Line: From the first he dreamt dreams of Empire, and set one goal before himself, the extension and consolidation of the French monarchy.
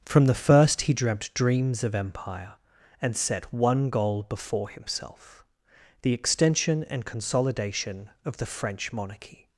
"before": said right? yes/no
yes